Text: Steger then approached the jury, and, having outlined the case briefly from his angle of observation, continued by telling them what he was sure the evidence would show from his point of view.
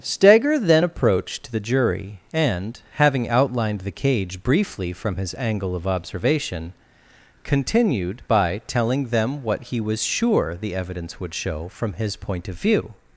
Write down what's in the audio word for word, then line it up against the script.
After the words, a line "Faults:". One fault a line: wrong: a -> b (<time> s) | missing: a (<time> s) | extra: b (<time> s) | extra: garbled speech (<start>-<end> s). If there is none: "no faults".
Steger then approached the jury, and, having outlined the cage briefly from his angle of observation, continued by telling them what he was sure the evidence would show from his point of view.
Faults:
wrong: case -> cage (3.9 s)